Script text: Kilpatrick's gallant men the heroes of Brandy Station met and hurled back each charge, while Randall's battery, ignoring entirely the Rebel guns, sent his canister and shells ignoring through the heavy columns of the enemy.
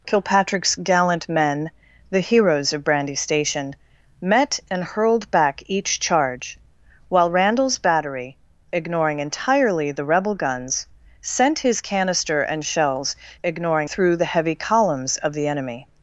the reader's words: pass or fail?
pass